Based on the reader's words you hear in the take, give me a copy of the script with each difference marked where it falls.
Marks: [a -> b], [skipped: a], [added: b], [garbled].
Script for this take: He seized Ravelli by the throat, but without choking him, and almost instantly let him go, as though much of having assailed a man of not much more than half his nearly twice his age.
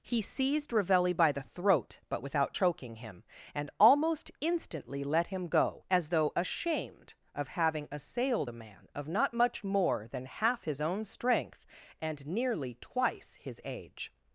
He seized Ravelli by the throat, but without choking him, and almost instantly let him go, as though [much -> ashamed] of having assailed a man of not much more than half his [added: own strength and] nearly twice his age.